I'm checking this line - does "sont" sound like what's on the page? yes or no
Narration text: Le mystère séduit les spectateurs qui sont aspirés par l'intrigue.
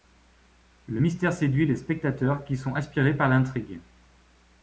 yes